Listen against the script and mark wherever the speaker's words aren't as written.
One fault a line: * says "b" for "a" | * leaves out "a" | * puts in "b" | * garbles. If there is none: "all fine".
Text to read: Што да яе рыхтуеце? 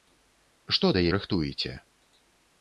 * leaves out "яе"